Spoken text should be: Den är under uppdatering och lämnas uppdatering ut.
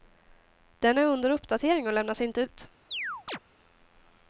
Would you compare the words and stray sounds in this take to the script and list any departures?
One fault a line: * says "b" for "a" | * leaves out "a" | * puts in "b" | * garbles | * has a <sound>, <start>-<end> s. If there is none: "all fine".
* says "inte" for "uppdatering"
* has a chirp, 2.9-3.4 s